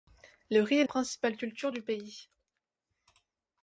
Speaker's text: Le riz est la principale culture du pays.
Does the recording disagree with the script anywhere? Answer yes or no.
yes